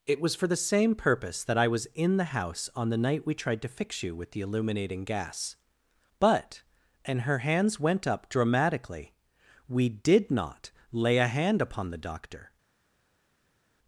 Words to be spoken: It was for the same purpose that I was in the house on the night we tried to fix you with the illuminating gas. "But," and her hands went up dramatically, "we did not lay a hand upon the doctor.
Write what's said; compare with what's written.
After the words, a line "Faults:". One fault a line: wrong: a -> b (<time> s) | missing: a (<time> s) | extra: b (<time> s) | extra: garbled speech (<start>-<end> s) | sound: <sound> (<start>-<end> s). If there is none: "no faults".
It was for the same purpose that I was in the house on the night we tried to fix you with the illuminating gas. "But," and her hands went up dramatically, "we did not lay a hand upon the doctor.
Faults:
no faults